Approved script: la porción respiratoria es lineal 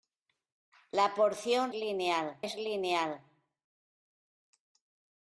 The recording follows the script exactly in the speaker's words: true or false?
false